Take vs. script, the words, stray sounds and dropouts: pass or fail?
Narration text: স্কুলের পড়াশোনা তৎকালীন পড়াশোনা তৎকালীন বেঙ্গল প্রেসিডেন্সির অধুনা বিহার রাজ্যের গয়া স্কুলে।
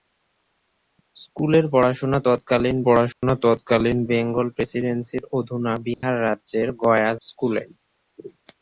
fail